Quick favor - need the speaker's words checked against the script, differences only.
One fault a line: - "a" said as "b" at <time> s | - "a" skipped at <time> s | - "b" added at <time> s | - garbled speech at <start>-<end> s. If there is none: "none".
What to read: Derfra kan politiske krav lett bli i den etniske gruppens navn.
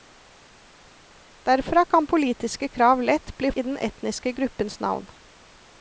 none